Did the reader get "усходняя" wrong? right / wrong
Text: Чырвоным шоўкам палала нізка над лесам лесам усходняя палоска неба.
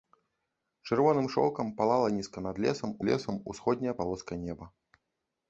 right